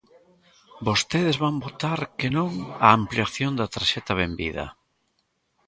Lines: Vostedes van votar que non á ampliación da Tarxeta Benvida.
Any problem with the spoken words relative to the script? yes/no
no